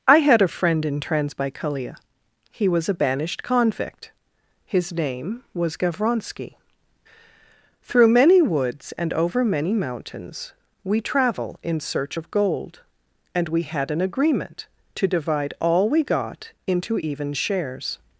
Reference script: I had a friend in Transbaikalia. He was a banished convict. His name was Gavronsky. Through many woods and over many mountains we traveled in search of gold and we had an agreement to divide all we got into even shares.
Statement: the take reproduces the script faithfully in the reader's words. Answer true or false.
false